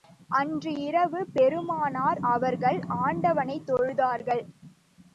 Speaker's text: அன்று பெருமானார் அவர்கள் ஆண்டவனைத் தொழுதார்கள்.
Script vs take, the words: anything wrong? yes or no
yes